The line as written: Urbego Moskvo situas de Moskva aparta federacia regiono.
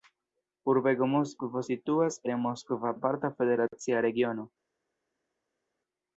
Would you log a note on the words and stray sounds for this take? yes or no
no